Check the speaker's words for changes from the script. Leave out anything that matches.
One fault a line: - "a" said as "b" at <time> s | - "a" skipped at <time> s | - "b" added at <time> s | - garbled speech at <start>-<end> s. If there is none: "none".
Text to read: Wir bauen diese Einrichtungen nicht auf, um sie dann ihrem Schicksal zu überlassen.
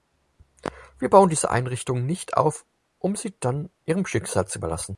none